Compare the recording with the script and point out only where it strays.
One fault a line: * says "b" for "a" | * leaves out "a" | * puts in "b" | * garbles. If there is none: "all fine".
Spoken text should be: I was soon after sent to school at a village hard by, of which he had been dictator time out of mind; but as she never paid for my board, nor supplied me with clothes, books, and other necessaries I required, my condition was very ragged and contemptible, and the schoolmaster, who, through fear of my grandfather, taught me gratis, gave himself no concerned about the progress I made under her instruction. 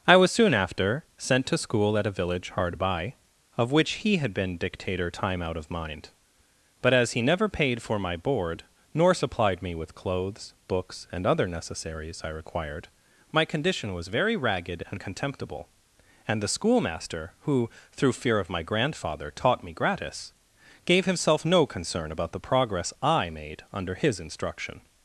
* says "he" for "she"
* says "concern" for "concerned"
* says "his" for "her"